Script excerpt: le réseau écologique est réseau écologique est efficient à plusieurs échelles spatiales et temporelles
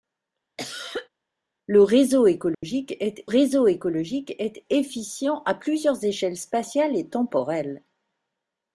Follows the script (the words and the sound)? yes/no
no